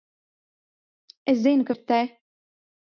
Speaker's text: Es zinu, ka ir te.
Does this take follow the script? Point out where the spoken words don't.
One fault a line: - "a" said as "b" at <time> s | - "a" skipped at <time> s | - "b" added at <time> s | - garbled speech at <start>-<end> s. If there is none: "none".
none